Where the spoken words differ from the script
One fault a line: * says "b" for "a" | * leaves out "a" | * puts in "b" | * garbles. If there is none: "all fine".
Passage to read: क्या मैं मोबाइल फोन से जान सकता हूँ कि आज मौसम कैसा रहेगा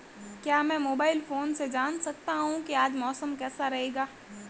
all fine